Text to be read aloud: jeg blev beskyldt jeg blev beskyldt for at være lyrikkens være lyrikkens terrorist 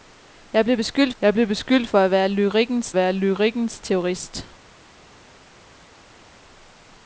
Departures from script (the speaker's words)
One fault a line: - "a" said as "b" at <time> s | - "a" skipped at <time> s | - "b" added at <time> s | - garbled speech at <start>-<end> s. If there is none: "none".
none